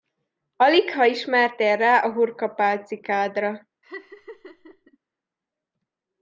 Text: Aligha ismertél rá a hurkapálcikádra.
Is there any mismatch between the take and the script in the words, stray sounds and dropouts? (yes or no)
yes